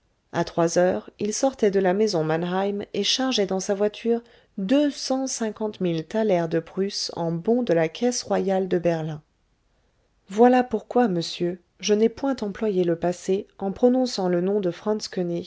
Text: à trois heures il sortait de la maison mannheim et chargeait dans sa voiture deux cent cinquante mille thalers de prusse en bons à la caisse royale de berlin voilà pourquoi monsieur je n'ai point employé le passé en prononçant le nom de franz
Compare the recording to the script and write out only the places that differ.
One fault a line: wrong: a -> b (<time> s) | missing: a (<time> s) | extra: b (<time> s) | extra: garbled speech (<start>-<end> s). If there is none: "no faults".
wrong: à -> de (7.6 s)